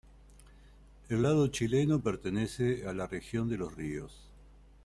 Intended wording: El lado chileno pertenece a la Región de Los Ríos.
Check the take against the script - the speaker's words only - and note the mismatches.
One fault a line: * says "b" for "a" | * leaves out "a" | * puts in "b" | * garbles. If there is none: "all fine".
all fine